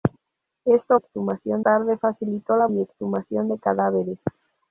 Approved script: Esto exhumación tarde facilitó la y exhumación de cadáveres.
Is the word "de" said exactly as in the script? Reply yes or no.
yes